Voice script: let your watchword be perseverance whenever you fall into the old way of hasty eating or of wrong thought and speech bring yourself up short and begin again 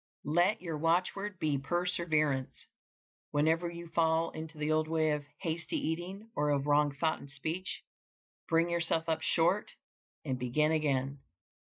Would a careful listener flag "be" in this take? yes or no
no